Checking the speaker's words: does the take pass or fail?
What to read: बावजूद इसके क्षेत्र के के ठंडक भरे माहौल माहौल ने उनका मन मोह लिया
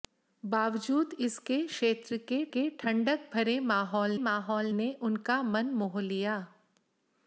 pass